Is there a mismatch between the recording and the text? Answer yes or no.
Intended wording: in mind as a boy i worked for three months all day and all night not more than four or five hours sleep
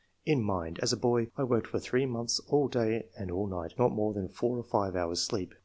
no